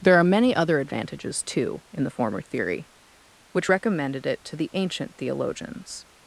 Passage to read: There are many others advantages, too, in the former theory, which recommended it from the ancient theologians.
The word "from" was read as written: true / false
false